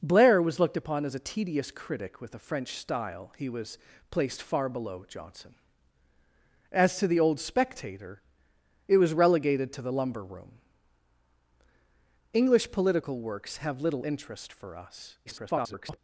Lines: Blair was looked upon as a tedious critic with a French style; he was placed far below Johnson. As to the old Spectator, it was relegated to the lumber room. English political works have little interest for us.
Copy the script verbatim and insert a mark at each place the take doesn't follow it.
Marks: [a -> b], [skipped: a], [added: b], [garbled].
Blair was looked upon as a tedious critic with a French style; he was placed far below Johnson. As to the old Spectator, it was relegated to the lumber room. English political works have little interest for us. [garbled]